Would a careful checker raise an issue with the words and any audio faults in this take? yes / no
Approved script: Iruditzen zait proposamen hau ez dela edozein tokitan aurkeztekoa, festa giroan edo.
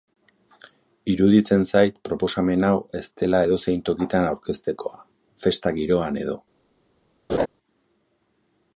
yes